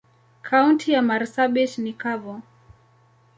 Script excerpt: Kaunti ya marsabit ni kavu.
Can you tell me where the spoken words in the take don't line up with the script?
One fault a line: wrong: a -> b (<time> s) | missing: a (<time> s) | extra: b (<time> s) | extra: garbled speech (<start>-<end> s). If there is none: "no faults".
no faults